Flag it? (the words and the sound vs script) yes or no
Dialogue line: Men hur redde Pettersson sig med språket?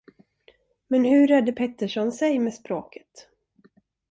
no